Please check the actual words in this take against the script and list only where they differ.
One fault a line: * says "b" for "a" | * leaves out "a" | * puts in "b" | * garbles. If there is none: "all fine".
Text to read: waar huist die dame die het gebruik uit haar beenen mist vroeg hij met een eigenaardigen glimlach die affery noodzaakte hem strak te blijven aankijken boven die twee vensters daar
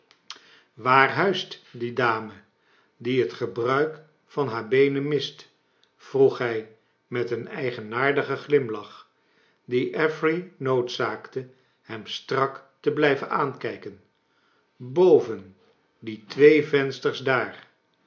* says "van" for "uit"